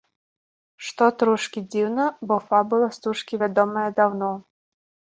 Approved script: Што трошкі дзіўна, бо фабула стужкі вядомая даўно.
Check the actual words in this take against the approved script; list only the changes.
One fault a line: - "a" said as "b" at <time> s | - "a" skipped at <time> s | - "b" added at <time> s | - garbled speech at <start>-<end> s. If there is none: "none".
none